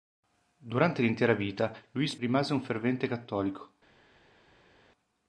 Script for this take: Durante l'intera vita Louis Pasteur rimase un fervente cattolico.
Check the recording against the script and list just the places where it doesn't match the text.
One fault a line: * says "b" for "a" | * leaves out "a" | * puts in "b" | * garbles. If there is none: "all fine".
* leaves out "Pasteur"